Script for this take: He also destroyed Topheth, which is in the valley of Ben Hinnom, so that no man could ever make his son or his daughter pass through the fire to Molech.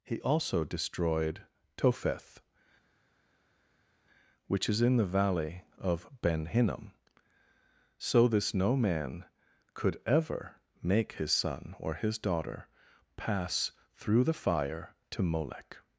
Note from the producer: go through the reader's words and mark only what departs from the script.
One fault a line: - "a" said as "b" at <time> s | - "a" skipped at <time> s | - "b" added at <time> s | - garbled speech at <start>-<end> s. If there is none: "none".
- "that" said as "this" at 8.3 s